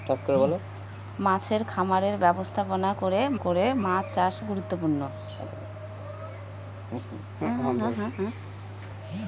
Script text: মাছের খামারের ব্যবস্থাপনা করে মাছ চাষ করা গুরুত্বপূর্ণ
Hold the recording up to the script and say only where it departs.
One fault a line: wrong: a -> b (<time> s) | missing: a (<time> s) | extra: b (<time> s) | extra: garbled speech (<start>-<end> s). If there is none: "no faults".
extra: করে (3.4 s)
missing: করা (4.4 s)